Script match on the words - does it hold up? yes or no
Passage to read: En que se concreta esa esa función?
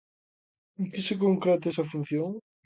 no